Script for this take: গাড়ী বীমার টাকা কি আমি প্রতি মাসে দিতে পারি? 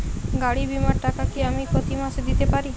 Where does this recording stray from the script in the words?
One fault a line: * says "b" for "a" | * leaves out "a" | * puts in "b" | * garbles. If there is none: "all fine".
all fine